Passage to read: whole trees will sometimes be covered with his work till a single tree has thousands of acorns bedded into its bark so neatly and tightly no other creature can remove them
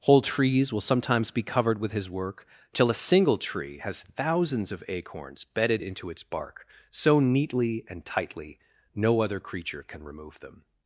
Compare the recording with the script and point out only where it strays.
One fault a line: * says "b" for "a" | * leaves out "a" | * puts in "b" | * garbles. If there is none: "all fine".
all fine